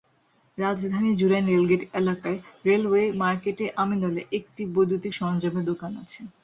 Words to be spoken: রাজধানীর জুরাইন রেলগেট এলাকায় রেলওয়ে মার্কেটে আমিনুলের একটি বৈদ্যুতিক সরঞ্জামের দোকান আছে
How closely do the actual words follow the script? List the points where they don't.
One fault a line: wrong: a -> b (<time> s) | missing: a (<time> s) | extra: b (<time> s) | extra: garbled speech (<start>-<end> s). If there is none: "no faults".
no faults